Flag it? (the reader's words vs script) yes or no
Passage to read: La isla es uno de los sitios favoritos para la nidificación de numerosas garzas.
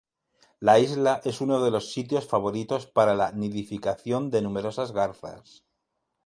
no